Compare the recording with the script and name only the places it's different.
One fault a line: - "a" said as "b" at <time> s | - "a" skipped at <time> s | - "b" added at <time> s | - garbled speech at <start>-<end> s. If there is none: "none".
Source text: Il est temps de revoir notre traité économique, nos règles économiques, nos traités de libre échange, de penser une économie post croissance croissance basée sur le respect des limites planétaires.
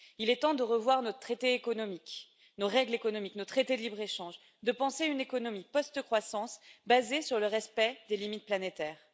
- "croissance" skipped at 6.6 s